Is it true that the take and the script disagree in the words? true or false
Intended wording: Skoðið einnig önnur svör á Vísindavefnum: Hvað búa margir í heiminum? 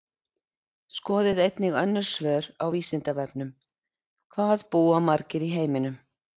false